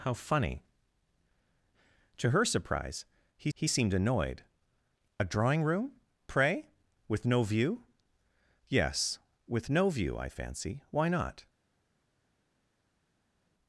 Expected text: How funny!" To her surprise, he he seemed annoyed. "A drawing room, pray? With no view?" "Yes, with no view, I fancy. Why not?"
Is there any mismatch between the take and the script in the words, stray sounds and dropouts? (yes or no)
no